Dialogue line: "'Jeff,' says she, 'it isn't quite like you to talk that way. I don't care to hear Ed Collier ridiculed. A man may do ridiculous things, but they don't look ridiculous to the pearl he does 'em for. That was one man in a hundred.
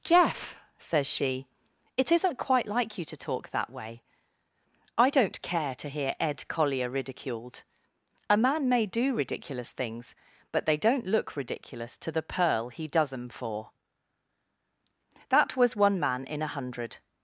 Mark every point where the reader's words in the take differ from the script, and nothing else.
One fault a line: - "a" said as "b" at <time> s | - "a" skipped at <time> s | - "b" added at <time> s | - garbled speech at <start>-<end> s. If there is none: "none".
none